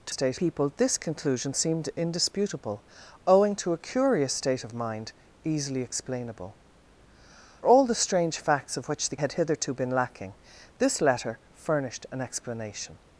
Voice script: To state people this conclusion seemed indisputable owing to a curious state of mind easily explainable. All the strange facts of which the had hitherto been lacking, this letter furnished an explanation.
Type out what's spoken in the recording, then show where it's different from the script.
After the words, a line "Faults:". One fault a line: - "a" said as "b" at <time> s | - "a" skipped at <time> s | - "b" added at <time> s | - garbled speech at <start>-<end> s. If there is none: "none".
To state people this conclusion seemed indisputable owing to a curious state of mind easily explainable. All the strange facts of which the had hitherto been lacking, this letter furnished an explanation.
Faults:
none